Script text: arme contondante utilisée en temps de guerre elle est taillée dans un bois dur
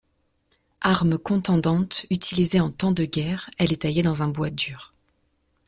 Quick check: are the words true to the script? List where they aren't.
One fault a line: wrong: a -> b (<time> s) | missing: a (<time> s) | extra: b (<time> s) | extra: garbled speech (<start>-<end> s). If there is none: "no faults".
no faults